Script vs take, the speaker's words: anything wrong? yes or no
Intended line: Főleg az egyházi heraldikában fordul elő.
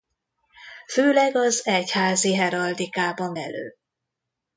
yes